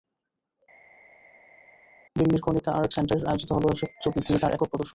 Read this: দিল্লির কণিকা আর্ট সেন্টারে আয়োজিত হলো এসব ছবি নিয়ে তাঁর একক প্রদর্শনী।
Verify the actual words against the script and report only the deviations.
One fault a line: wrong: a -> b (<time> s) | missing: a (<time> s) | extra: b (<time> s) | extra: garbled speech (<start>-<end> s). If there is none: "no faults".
no faults